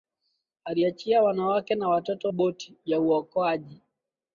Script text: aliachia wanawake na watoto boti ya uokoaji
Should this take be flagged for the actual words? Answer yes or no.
no